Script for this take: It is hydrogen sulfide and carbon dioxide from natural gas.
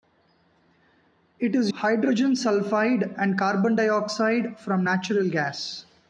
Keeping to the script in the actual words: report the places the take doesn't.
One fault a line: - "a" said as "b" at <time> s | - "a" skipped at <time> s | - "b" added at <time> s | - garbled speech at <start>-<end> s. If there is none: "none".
none